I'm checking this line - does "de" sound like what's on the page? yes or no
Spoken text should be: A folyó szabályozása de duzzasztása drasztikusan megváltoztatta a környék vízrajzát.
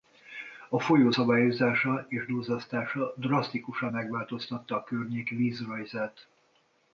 no